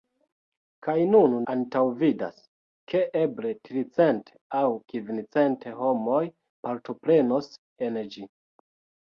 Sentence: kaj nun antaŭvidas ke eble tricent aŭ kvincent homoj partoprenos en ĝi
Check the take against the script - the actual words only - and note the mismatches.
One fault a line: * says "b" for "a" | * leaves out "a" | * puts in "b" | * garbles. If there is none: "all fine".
all fine